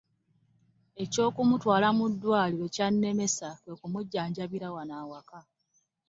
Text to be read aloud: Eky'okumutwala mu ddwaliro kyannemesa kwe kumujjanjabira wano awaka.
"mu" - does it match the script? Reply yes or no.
yes